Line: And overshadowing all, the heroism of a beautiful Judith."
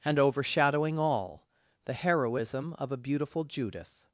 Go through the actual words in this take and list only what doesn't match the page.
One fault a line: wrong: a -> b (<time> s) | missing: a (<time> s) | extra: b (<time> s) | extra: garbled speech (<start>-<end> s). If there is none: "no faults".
no faults